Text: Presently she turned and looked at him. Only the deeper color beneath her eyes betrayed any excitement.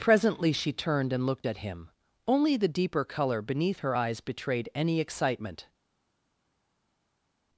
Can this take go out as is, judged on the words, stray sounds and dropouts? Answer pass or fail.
pass